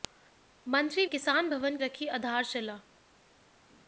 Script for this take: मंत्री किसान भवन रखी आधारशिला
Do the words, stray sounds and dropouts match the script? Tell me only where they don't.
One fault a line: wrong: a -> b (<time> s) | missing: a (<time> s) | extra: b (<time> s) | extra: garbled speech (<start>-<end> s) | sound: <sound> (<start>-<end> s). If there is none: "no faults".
no faults